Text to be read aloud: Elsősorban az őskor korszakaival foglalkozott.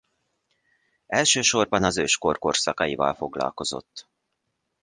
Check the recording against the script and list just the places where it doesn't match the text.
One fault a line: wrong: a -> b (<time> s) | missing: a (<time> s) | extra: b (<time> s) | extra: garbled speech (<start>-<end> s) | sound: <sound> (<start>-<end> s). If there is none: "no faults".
no faults